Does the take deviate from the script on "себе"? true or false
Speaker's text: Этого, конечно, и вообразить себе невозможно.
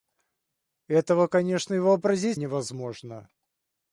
true